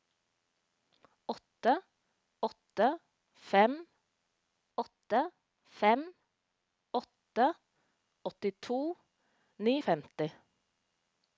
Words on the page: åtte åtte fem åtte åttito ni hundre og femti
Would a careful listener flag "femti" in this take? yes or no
no